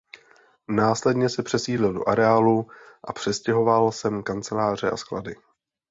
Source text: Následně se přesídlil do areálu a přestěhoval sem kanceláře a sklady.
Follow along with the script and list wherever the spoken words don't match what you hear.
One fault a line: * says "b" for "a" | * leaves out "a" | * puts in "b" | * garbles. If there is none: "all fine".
all fine